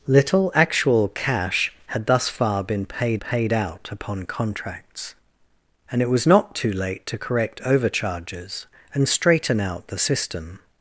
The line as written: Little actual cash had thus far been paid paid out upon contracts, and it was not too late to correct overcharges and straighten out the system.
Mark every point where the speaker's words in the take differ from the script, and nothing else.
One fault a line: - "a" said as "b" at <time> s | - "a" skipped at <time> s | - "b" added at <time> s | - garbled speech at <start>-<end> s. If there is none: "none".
none